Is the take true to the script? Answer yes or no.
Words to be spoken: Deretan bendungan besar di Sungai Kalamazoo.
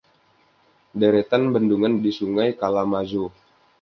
no